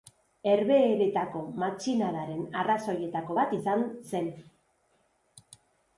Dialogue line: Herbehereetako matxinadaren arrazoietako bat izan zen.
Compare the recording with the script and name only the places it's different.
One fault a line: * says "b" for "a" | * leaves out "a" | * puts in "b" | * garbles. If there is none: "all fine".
all fine